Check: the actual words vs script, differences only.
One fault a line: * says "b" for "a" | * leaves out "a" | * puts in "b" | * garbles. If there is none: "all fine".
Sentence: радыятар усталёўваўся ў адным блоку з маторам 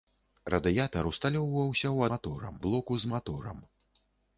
* says "маторам" for "адным"